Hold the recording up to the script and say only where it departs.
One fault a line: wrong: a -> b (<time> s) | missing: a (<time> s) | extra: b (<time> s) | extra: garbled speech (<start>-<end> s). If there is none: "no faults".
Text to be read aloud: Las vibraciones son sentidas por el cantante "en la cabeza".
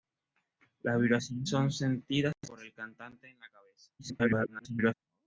extra: garbled speech (4.0-4.9 s)